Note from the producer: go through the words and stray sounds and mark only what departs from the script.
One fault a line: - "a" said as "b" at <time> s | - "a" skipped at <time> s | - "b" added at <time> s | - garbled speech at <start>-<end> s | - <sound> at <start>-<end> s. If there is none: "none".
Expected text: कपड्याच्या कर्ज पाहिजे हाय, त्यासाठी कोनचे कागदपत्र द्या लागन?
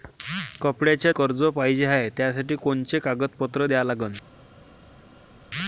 none